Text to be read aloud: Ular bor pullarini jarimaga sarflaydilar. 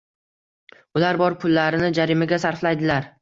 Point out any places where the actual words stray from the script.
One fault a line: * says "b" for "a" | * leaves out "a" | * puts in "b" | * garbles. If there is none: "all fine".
all fine